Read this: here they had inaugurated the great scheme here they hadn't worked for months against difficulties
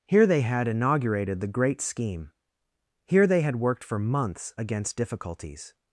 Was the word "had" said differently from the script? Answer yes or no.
no